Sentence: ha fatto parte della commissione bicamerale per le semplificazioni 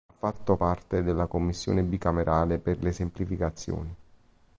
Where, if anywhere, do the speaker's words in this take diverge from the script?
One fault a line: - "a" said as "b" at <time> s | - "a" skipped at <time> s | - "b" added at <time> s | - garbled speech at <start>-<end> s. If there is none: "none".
none